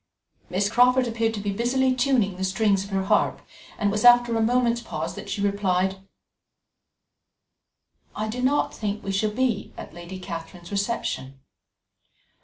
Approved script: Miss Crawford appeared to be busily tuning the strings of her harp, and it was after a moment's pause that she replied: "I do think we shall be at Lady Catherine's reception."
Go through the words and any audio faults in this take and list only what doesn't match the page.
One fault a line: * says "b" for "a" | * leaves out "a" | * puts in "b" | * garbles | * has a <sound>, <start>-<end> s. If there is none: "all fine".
* puts in "not"